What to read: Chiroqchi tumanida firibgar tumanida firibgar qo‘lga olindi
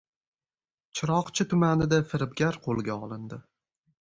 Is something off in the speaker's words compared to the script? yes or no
yes